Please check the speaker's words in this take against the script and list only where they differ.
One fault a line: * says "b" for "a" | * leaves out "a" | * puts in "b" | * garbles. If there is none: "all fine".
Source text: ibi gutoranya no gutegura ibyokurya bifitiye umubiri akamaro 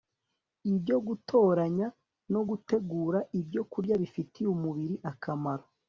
* says "ibyo" for "ibi"